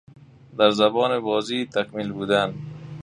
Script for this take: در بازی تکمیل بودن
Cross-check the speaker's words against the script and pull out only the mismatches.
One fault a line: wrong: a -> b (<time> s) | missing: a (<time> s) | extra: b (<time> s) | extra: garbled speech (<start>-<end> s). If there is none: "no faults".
extra: زبان (0.7 s)